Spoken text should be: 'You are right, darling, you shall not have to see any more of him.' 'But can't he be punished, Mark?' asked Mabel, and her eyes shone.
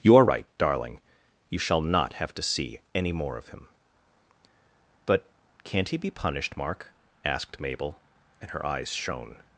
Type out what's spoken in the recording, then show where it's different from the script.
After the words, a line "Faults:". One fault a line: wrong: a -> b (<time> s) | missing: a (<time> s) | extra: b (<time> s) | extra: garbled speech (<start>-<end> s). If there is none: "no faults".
'You are right, darling, you shall not have to see any more of him.' 'But can't he be punished, Mark?' asked Mabel, and her eyes shone.
Faults:
no faults